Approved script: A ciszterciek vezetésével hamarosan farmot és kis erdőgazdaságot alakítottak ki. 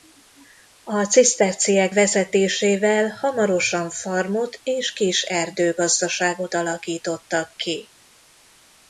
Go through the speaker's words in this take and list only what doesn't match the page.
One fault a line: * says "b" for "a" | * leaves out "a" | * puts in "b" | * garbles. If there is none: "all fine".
all fine